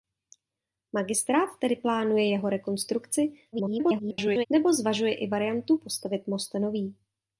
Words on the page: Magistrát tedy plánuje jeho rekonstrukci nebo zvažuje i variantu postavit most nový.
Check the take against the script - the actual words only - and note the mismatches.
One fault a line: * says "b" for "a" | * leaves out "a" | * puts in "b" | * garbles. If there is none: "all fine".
* garbles